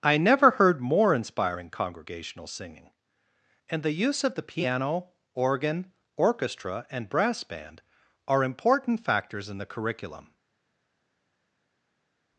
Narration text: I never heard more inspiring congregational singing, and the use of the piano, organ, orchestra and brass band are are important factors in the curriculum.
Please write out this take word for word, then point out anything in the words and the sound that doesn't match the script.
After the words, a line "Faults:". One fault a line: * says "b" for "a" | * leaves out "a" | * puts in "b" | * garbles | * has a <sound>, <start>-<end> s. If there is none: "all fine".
I never heard more inspiring congregational singing, and the use of the piano, organ, orchestra and brass band are important factors in the curriculum.
Faults:
* leaves out "are"